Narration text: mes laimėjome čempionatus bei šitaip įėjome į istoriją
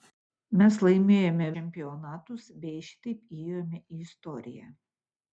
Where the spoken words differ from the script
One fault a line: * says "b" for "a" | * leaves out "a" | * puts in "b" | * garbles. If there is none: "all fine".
all fine